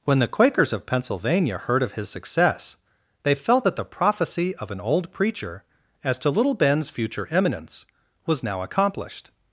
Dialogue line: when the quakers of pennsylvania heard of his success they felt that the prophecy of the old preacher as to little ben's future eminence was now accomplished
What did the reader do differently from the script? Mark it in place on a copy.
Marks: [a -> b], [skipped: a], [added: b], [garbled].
when the quakers of pennsylvania heard of his success they felt that the prophecy of [the -> an] old preacher as to little ben's future eminence was now accomplished